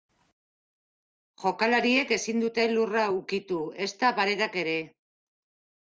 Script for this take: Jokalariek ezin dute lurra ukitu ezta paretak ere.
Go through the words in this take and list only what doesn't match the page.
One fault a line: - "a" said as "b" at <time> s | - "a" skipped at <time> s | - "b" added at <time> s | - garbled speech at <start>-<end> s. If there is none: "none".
none